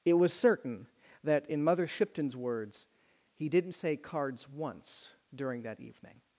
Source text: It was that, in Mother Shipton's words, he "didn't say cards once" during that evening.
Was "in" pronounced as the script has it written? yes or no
yes